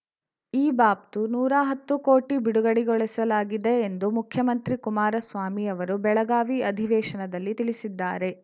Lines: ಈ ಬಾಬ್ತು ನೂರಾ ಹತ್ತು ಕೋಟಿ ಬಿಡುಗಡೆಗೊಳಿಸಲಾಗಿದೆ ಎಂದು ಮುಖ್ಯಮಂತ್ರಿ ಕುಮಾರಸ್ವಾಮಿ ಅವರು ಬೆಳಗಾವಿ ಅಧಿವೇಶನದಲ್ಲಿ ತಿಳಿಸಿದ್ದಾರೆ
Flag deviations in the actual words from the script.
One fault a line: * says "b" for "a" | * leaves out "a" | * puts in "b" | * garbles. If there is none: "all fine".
all fine